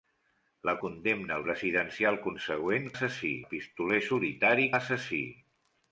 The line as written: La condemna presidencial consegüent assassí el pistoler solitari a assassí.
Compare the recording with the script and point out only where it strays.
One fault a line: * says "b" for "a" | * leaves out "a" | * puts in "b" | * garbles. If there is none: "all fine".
all fine